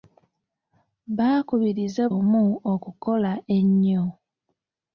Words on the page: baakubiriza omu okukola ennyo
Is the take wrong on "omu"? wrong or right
right